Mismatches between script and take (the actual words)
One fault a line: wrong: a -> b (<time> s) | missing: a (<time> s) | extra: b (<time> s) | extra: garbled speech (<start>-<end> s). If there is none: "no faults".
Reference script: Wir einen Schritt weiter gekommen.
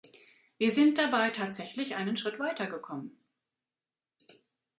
extra: sind dabei tatsächlich (0.7 s)